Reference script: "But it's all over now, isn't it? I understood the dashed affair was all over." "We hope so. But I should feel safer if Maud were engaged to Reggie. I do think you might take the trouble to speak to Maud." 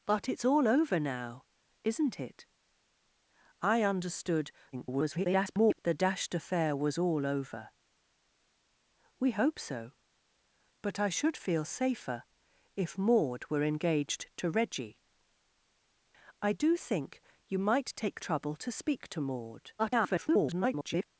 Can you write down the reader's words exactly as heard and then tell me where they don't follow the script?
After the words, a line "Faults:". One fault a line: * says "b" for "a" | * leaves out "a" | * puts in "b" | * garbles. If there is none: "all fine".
"But it's all over now, isn't it? I understood [garbled] the dashed affair was all over." "We hope so. But I should feel safer if Maud were engaged to Reggie. I do think you might take trouble to speak to Maud." [garbled]
Faults:
* garbles
* leaves out "the"
* garbles